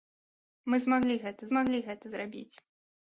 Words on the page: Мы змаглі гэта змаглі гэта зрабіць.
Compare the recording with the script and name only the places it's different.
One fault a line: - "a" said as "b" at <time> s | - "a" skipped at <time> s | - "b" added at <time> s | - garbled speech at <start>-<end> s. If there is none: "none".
none